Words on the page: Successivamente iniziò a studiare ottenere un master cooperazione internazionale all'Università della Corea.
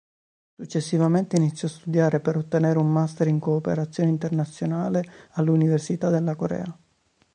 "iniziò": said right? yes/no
yes